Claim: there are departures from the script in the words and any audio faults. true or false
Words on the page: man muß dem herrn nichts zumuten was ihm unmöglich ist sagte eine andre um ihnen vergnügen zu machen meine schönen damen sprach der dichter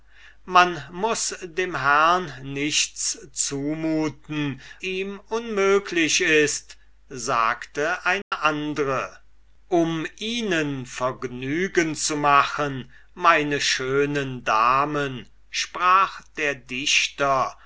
true